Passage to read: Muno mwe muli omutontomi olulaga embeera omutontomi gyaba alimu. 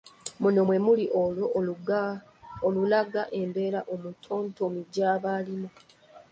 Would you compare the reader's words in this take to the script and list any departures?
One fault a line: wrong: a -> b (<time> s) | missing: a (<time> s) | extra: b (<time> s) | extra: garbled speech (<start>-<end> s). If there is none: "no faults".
wrong: omutontomi -> olwo (1.2 s)